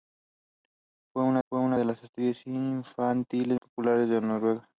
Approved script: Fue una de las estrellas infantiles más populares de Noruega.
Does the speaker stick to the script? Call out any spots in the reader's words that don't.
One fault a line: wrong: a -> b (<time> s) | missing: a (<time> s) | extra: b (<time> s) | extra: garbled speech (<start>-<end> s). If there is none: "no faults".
extra: fue una (1.5 s)
missing: más (3.6 s)